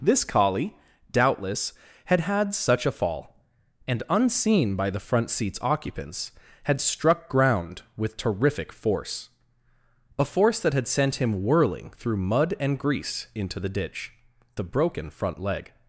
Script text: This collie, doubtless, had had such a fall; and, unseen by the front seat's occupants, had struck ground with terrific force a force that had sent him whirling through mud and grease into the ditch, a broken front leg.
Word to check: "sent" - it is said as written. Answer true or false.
true